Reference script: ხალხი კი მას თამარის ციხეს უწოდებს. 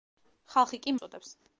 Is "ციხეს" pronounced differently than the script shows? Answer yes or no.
yes